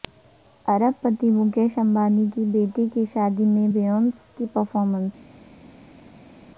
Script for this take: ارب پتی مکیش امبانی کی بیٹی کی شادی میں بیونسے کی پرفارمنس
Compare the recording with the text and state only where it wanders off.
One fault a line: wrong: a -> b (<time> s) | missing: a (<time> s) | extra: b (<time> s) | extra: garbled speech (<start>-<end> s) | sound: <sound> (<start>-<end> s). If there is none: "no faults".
no faults